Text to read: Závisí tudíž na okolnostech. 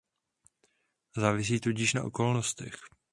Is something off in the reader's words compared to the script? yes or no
no